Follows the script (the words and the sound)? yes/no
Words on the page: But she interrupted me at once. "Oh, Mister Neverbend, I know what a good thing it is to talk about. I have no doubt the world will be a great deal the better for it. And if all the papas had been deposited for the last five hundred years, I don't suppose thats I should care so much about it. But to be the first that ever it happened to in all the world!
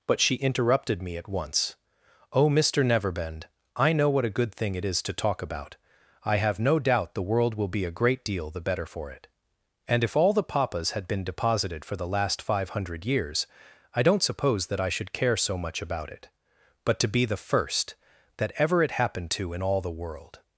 no